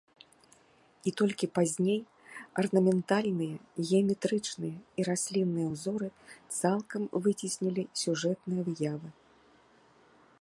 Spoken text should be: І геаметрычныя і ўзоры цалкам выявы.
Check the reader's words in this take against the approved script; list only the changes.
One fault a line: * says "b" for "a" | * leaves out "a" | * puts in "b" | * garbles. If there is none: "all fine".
* puts in "толькі пазней арнаментальныя"
* puts in "раслінныя"
* puts in "выцеснілі сюжэтныя"